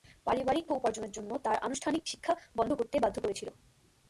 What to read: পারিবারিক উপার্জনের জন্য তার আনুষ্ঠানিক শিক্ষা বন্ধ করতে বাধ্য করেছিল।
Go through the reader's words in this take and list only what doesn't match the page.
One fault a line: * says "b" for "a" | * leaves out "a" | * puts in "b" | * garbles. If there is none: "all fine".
all fine